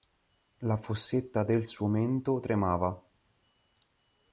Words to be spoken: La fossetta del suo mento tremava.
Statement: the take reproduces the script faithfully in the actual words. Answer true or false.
true